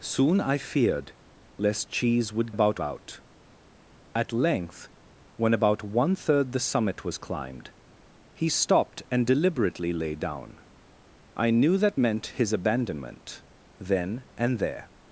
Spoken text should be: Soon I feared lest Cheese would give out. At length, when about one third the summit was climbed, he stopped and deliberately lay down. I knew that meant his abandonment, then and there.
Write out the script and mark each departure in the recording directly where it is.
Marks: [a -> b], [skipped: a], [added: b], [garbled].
Soon I feared lest Cheese would [give -> about] out. At length, when about one third the summit was climbed, he stopped and deliberately lay down. I knew that meant his abandonment, then and there.